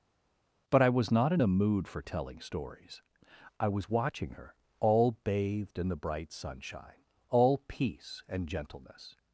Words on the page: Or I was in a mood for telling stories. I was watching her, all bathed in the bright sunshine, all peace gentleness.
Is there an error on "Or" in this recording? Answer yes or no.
yes